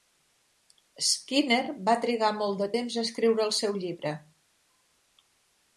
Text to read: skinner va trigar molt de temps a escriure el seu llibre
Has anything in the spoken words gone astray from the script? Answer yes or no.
no